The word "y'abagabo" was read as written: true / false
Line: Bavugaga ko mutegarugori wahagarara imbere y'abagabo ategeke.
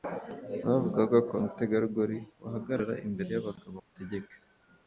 true